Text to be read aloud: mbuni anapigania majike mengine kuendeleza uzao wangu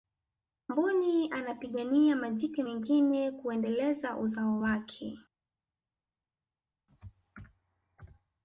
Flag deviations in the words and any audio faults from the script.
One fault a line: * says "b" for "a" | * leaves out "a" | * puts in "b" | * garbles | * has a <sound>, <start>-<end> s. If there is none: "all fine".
* says "wake" for "wangu"